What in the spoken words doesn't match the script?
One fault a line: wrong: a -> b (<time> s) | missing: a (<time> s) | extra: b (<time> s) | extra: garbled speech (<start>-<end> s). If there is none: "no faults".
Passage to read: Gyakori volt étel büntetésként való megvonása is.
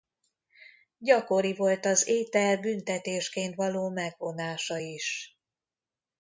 extra: az (1.9 s)